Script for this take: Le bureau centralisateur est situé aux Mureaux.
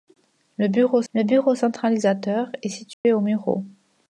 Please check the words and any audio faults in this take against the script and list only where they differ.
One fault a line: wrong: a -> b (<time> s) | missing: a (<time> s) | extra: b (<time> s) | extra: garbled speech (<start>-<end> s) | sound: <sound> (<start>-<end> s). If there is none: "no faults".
extra: le bureau (1.1 s)
sound: dropout (2.9-3.0 s)